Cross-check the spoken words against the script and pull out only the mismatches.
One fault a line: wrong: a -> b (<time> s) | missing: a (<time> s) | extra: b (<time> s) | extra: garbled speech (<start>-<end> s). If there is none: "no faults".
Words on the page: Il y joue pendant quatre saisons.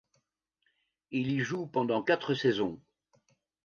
no faults